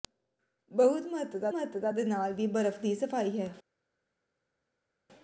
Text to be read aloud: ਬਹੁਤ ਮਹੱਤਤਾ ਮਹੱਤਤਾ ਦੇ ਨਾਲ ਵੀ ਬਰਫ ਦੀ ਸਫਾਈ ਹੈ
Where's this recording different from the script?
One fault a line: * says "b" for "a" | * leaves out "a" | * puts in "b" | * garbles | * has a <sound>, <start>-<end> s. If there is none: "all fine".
all fine